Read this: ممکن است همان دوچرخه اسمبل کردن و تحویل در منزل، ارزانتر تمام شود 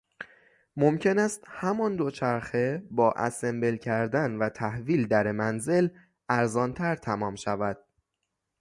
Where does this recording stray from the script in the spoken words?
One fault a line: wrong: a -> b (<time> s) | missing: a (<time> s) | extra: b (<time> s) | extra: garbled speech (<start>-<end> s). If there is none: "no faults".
extra: با (2.9 s)